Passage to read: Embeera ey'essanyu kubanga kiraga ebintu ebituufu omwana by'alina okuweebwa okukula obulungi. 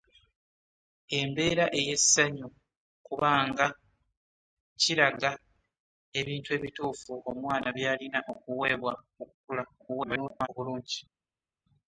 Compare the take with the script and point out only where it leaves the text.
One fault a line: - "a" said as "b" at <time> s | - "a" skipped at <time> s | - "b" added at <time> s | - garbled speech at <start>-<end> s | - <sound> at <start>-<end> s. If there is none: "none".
- garbled speech at 9.8-10.5 s